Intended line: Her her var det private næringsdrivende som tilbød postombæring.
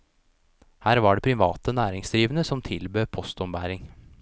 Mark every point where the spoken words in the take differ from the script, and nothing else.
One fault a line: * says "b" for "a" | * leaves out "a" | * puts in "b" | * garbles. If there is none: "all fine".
* leaves out "her"